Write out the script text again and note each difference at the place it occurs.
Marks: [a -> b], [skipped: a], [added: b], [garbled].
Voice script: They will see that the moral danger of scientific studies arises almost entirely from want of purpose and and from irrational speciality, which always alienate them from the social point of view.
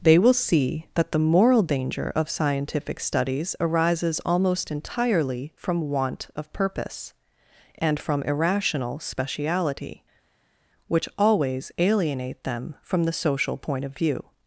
They will see that the moral danger of scientific studies arises almost entirely from want of purpose and [skipped: and] from irrational speciality, which always alienate them from the social point of view.